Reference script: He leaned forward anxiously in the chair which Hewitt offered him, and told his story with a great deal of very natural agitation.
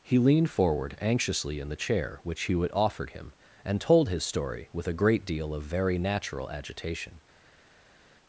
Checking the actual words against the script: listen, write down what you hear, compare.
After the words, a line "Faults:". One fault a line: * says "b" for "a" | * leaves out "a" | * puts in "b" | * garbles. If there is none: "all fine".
He leaned forward anxiously in the chair which Hewitt offered him, and told his story with a great deal of very natural agitation.
Faults:
all fine